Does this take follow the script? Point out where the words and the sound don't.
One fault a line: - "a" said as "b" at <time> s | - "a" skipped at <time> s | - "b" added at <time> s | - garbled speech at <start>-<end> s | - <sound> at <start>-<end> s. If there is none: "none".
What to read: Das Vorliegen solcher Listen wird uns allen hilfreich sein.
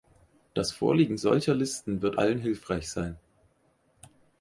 - "uns" skipped at 2.1 s